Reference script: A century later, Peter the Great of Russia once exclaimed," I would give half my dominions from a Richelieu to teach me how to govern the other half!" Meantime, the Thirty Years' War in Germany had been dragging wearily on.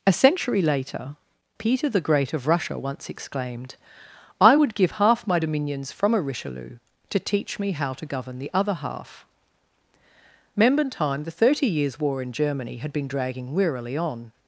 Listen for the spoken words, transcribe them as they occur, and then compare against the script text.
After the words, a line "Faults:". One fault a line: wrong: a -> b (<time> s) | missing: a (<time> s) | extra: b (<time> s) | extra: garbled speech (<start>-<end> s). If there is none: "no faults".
A century later, Peter the Great of Russia once exclaimed," I would give half my dominions from a Richelieu to teach me how to govern the other half!" Meantime, the Thirty Years' War in Germany had been dragging wearily on.
Faults:
no faults